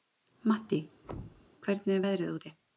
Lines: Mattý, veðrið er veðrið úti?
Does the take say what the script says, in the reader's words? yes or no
no